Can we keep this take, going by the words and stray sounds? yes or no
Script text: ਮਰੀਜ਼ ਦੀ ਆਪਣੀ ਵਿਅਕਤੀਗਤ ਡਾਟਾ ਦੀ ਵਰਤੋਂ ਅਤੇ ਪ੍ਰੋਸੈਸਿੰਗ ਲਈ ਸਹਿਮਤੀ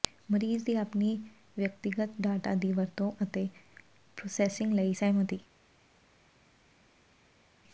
yes